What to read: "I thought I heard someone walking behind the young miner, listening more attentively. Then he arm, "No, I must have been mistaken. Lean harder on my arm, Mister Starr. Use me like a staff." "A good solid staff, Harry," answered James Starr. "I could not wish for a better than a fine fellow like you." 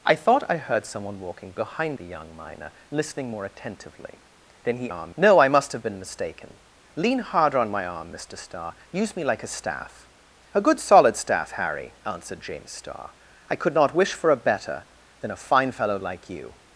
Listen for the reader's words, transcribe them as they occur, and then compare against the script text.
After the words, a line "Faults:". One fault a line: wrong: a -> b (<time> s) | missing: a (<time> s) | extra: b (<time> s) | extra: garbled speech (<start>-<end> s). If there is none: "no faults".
"I thought I heard someone walking behind the young miner, listening more attentively. Then he arm, "No, I must have been mistaken. Lean harder on my arm, Mister Starr. Use me like a staff." "A good solid staff, Harry," answered James Starr. "I could not wish for a better than a fine fellow like you."
Faults:
no faults